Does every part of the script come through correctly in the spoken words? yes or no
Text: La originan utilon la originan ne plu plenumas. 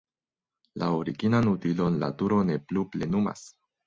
no